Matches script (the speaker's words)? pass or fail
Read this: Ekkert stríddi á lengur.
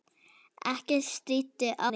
pass